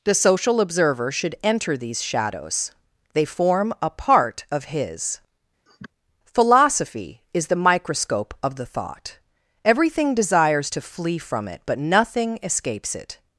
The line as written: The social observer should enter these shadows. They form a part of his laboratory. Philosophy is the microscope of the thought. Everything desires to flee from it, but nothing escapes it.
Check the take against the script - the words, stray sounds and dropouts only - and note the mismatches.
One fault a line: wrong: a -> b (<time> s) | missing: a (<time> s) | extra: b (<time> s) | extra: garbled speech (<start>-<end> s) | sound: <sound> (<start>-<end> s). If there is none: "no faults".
missing: laboratory (5.2 s)
sound: sniff (5.7-5.9 s)